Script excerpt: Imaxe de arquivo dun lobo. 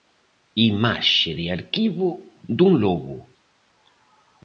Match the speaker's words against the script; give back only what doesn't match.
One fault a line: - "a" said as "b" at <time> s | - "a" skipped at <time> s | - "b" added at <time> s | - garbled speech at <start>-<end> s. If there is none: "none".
none